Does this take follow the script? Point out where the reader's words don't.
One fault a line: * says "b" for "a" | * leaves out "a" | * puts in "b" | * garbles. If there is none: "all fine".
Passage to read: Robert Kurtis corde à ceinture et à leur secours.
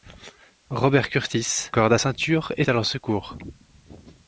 all fine